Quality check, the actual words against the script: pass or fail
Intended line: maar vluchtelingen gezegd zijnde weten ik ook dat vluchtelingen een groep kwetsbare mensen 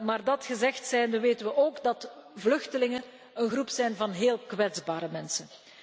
fail